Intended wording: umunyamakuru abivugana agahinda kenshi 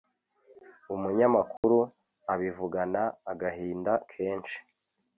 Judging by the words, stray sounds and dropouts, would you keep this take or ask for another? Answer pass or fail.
fail